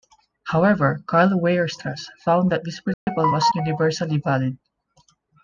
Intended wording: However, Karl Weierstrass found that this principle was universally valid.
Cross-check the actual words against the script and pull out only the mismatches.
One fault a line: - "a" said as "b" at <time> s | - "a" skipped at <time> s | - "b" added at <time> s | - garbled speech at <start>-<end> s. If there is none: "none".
none